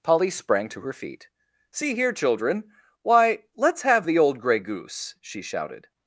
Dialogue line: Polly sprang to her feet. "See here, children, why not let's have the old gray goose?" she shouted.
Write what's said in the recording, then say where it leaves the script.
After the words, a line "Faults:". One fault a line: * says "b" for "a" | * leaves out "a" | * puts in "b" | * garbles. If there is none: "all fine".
Polly sprang to her feet. "See here, children, why let's have the old gray goose?" she shouted.
Faults:
* leaves out "not"